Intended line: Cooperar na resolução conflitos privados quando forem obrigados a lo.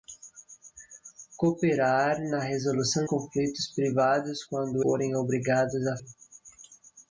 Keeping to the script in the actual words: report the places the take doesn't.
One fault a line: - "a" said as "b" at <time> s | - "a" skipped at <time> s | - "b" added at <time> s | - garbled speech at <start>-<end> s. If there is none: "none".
none